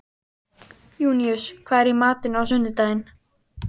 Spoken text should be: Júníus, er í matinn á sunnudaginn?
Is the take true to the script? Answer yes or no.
no